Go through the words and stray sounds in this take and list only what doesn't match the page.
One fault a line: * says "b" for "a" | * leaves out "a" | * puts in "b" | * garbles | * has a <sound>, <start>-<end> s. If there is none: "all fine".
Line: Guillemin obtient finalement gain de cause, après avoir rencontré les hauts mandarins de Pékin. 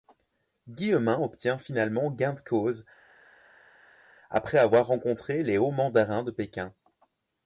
all fine